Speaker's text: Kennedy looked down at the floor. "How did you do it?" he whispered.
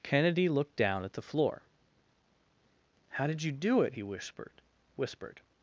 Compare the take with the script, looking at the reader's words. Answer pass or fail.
fail